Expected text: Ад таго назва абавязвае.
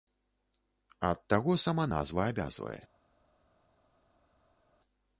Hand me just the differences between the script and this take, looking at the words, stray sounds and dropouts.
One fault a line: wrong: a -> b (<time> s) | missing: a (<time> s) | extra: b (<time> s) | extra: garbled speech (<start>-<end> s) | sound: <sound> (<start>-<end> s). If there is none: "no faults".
extra: сама (1.6 s)